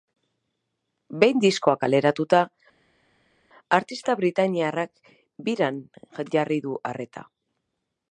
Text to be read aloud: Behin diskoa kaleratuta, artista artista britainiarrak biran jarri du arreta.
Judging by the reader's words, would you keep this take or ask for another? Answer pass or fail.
fail